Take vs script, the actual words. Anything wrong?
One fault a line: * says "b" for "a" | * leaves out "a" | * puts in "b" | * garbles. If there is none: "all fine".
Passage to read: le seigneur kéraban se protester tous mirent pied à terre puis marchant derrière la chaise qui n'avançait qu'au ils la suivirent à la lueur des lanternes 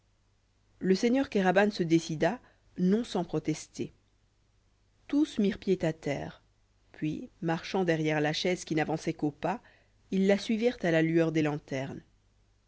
* puts in "décida non sans"
* puts in "pas"